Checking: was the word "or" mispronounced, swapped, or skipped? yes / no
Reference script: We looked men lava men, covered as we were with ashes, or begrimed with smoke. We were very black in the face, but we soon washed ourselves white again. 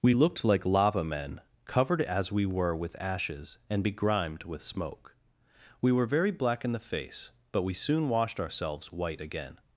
yes